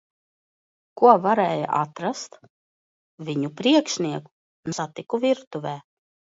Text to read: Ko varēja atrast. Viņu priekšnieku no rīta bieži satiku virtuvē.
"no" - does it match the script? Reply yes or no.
no